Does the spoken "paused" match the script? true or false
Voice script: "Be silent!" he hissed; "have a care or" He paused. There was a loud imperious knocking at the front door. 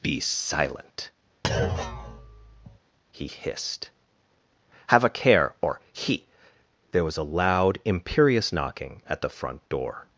false